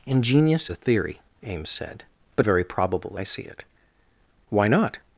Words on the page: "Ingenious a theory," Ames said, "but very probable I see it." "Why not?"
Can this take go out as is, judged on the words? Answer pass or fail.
pass